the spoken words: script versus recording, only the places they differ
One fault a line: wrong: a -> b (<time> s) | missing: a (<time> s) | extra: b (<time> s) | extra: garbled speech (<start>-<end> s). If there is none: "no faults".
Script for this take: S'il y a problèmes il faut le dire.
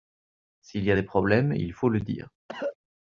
extra: des (0.9 s)